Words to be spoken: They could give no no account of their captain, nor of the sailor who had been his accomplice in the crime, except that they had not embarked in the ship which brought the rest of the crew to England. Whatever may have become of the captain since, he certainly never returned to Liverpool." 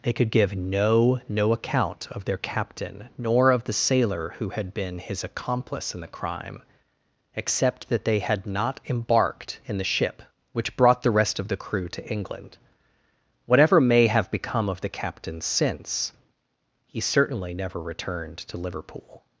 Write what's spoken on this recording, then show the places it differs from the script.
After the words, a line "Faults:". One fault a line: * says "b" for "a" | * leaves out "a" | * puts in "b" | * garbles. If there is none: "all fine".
They could give no no account of their captain, nor of the sailor who had been his accomplice in the crime, except that they had not embarked in the ship which brought the rest of the crew to England. Whatever may have become of the captain since, he certainly never returned to Liverpool."
Faults:
all fine